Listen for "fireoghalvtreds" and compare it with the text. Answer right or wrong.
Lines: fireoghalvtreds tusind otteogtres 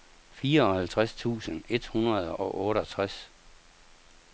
right